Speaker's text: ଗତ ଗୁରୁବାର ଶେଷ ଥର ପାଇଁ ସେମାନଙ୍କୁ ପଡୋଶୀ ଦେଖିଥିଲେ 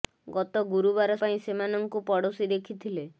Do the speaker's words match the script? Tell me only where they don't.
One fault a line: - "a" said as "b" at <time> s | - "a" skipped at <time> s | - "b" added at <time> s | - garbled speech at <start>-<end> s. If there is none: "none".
- "ଶେଷ ଥର" skipped at 1.2 s